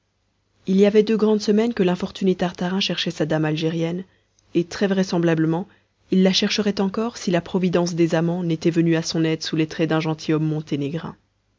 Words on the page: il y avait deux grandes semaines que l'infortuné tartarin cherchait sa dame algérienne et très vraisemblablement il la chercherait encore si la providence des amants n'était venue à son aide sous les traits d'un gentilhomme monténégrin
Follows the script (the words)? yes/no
yes